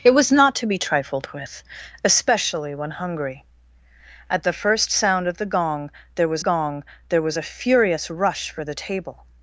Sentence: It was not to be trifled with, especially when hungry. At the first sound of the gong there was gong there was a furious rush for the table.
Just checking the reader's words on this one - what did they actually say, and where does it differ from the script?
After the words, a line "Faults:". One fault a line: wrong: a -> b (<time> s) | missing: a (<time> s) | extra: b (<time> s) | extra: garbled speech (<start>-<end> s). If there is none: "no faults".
It was not to be trifled with, especially when hungry. At the first sound of the gong there was gong there was a furious rush for the table.
Faults:
no faults